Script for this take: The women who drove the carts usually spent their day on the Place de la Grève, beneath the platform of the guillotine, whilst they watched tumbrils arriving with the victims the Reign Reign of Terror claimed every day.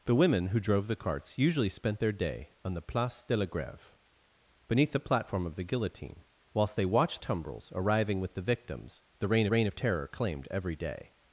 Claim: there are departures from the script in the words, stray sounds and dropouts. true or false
false